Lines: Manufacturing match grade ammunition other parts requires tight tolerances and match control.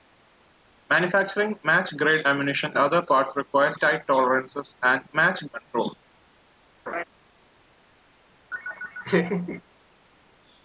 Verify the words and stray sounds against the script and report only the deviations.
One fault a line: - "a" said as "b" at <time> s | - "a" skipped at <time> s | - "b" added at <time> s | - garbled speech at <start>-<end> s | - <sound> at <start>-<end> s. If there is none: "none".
- laugh at 6.9-7.0 s
- laugh at 8.5-9.6 s